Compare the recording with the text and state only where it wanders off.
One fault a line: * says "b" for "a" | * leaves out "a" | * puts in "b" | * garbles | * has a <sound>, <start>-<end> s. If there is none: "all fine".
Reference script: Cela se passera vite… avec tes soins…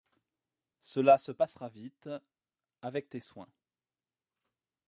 all fine